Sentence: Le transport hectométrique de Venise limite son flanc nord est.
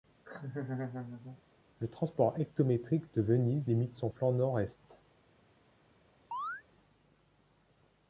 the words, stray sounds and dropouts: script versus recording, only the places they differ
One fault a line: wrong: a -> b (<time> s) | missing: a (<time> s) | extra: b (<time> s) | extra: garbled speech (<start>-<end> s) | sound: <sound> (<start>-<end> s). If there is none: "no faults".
sound: laugh (0.2-1.4 s)
sound: chirp (6.3-6.6 s)